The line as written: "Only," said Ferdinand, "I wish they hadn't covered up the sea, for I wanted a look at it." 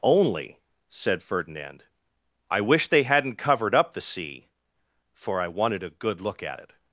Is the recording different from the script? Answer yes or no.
yes